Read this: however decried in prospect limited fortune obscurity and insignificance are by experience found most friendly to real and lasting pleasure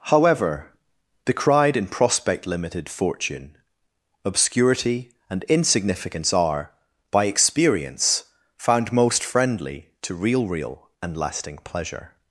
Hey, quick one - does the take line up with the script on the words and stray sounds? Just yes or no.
no